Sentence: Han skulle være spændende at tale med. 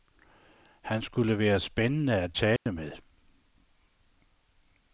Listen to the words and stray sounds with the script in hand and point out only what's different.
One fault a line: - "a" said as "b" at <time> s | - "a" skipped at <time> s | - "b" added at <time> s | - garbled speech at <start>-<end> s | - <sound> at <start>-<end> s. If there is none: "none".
- dropout at 2.6-2.7 s